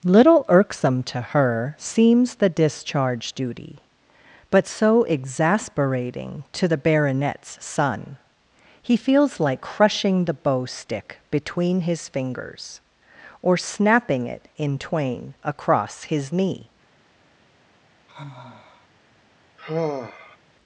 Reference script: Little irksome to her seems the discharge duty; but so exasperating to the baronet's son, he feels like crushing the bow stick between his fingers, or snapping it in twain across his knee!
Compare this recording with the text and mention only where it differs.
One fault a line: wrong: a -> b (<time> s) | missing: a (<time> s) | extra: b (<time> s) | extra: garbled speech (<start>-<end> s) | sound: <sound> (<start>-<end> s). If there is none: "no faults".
sound: sigh (18.1-18.9 s)
sound: sigh (19.6-20.4 s)